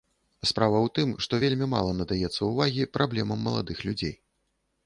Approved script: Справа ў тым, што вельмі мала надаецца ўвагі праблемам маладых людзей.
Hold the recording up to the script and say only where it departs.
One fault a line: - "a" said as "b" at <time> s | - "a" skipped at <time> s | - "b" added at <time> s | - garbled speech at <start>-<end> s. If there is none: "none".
none